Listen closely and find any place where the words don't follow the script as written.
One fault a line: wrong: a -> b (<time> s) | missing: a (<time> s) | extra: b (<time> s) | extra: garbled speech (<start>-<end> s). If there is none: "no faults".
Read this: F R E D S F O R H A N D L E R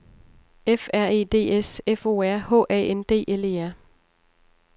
no faults